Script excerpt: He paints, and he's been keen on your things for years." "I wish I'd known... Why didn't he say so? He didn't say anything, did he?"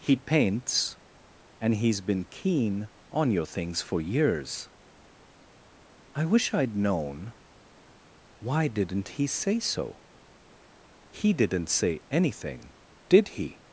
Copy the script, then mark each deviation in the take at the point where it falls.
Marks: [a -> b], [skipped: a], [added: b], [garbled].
He paints, and he's been keen on your things for years." "I wish I'd known... Why didn't he say so? He didn't say anything, did he?"